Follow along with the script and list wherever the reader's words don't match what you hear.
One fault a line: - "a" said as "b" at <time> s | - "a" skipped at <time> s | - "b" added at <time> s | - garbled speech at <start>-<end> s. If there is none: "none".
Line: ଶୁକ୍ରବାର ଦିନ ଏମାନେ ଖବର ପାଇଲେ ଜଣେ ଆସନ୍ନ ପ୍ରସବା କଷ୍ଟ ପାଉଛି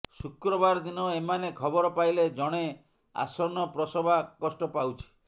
none